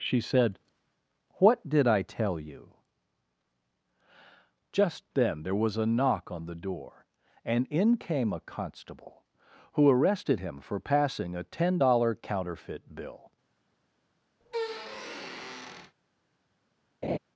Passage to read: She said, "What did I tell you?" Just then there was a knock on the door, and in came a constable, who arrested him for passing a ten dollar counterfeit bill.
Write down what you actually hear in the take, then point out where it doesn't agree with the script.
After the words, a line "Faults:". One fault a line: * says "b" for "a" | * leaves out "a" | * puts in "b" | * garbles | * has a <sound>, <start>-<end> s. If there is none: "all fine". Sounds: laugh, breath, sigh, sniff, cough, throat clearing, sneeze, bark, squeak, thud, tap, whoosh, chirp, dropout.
She said, "What did I tell you?" Just then there was a knock on the door, and in came a constable, who arrested him for passing a ten dollar counterfeit bill.
Faults:
* has a squeak, 14.4-16.0 s
* has a laugh, 17.0-17.2 s